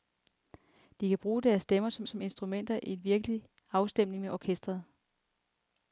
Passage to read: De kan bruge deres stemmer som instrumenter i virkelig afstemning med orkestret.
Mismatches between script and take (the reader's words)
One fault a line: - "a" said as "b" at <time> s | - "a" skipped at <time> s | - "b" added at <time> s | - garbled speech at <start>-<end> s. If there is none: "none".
- "som" added at 2.0 s